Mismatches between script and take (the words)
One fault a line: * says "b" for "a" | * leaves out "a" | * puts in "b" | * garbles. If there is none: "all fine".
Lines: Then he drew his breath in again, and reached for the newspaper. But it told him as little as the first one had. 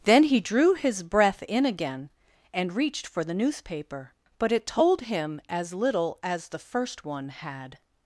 all fine